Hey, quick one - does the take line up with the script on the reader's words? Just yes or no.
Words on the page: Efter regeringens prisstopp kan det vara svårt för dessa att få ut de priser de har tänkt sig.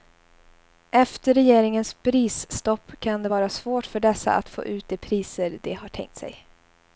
yes